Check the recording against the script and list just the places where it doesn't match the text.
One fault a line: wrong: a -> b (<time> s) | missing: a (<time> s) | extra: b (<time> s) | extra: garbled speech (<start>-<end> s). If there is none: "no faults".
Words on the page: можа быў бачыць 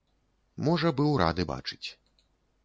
extra: рады (1.2 s)